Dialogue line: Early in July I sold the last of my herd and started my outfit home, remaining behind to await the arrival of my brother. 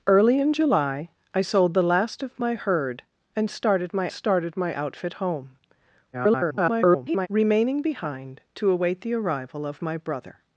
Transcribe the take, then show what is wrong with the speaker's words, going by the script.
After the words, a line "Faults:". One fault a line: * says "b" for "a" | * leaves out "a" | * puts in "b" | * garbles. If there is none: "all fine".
Early in July I sold the last of my herd and started my started my outfit home, [garbled] remaining behind to await the arrival of my brother.
Faults:
* puts in "started my"
* garbles